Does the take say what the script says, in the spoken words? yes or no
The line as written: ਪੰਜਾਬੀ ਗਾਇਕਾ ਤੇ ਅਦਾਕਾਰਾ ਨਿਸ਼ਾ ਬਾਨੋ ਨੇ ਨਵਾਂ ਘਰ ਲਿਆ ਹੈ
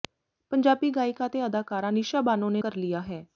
no